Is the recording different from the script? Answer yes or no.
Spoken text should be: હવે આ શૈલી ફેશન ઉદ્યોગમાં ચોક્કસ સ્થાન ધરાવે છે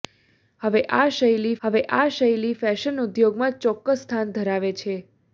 yes